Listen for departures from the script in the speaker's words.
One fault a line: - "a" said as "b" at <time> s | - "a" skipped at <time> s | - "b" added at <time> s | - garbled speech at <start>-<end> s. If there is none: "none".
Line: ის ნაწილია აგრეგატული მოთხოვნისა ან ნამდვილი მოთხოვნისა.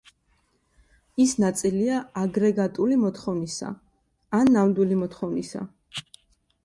none